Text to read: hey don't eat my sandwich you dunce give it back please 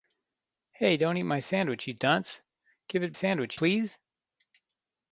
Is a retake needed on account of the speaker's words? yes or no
yes